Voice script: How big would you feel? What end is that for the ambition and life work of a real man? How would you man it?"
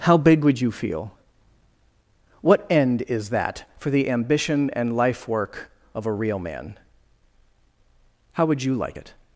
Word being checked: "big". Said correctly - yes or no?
yes